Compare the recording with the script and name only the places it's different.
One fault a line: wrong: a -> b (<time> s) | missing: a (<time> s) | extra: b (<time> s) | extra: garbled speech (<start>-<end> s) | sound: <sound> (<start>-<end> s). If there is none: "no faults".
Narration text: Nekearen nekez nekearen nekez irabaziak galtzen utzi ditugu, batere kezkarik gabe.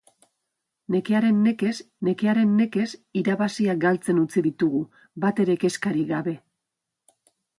no faults